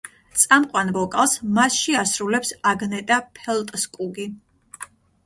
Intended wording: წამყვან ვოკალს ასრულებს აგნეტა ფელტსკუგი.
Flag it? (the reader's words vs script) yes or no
yes